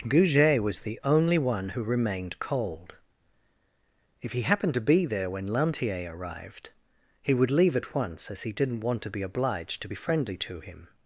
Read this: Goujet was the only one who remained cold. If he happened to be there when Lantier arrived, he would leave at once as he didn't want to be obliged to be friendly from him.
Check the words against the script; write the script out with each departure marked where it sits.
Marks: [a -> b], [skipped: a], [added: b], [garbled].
Goujet was the only one who remained cold. If he happened to be there when Lantier arrived, he would leave at once as he didn't want to be obliged to be friendly [from -> to] him.